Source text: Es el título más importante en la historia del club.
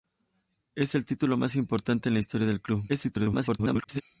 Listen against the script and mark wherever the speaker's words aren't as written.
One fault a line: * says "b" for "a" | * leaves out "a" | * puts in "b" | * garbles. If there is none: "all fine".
* garbles